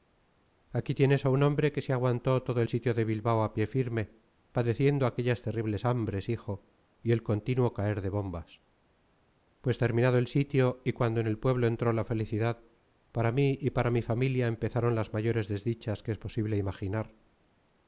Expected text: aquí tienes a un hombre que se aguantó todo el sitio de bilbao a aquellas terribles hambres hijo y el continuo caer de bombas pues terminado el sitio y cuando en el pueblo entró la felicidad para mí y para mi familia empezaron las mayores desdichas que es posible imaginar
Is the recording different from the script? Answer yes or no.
yes